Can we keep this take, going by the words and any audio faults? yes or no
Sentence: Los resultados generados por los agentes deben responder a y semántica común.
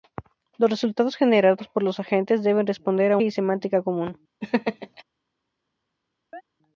no